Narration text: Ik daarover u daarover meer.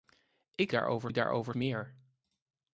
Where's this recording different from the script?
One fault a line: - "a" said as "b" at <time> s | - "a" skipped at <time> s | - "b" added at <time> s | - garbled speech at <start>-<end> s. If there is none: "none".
none